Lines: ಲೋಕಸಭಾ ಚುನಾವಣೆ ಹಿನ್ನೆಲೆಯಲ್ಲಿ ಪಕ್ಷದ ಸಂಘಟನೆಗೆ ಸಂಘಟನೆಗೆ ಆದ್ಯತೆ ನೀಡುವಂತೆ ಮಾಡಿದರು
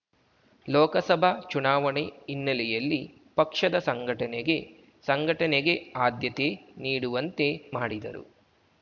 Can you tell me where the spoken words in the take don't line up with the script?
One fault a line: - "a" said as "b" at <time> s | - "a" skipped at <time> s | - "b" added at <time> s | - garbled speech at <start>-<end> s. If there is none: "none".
none